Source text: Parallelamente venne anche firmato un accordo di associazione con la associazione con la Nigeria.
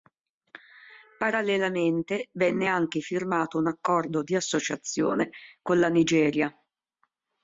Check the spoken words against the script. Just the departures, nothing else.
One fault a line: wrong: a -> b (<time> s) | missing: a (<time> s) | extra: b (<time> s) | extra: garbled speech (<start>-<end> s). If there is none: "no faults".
missing: associazione con la (5.9 s)